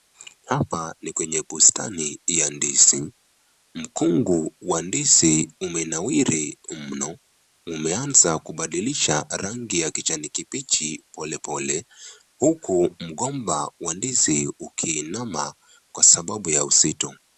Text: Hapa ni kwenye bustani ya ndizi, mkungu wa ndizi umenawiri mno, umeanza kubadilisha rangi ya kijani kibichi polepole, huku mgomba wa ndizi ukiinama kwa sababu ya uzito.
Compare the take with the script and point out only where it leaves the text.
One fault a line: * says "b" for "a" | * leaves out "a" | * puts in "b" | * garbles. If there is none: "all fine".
all fine